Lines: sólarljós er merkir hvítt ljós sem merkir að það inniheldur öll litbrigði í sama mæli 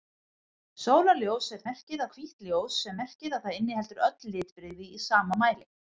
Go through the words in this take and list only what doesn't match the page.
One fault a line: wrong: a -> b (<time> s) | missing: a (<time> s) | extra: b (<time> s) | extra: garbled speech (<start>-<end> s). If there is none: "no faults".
no faults